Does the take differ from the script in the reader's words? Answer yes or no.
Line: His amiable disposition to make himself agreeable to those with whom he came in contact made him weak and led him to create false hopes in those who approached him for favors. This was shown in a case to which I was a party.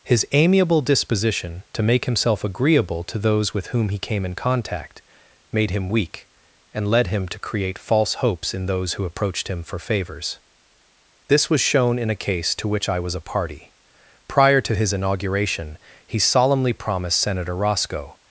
yes